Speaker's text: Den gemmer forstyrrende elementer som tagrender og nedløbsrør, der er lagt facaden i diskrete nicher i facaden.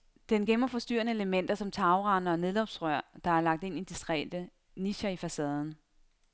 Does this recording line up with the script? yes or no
no